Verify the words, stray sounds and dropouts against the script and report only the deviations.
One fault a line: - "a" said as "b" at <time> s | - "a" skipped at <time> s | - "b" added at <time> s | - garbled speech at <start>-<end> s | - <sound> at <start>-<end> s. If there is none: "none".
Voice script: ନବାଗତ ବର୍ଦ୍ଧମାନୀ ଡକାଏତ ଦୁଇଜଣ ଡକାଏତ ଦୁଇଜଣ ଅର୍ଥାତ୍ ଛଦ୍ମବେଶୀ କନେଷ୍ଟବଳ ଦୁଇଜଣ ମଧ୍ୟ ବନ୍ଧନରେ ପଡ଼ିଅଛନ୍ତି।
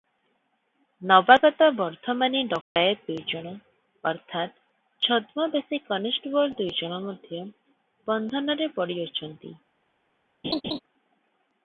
- dropout at 2.6-2.8 s
- "ଡକାଏତ ଦୁଇଜଣ" skipped at 3.5 s
- laugh at 10.4-10.8 s